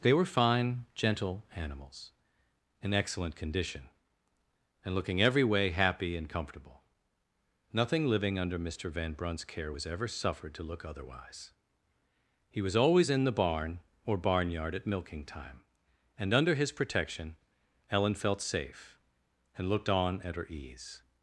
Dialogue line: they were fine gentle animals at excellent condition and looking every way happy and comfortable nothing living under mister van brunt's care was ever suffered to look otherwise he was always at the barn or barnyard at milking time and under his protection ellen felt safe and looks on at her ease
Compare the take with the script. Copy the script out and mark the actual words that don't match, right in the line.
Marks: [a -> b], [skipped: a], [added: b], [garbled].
they were fine gentle animals [at -> in] excellent condition and looking every way happy and comfortable nothing living under mister van brunt's care was ever suffered to look otherwise he was always [at -> in] the barn or barnyard at milking time and under his protection ellen felt safe and [looks -> looked] on at her ease